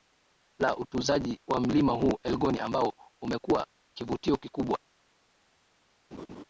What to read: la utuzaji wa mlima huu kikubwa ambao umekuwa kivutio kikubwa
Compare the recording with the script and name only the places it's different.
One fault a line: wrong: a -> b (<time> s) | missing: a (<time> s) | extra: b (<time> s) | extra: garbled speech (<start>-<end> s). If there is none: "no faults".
wrong: kikubwa -> elgon (2.2 s)